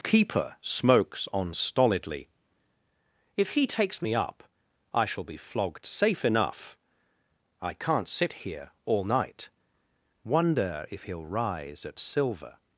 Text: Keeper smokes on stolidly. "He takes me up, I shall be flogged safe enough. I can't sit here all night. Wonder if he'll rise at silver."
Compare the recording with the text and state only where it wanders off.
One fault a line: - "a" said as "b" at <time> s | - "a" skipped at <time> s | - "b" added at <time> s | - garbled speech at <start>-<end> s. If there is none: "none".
- "If" added at 3.4 s